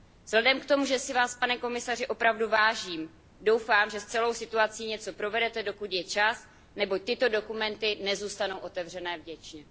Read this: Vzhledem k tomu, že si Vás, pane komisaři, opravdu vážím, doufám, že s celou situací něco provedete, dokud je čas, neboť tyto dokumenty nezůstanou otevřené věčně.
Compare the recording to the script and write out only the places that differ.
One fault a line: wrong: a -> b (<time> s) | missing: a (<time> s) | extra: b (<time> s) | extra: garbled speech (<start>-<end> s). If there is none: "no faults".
no faults